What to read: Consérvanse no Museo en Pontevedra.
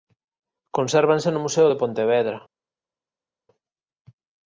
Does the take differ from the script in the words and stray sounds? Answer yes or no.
yes